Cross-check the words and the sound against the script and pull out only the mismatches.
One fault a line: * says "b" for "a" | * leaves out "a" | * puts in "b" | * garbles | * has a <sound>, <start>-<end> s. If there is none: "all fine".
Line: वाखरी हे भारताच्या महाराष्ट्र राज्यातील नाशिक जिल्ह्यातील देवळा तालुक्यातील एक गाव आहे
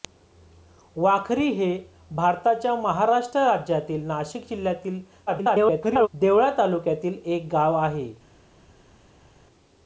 * garbles